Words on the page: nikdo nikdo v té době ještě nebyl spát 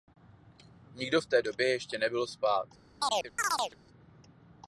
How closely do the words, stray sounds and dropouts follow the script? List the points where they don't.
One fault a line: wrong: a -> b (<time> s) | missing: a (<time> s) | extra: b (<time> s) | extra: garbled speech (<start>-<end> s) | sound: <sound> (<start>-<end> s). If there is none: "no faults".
missing: nikdo (1.2 s)
sound: chirp (3.0-3.8 s)